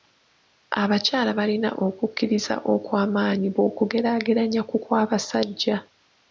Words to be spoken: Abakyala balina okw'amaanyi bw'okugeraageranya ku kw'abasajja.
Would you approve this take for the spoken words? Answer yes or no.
no